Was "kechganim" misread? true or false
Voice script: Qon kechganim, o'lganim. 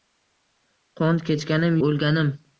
false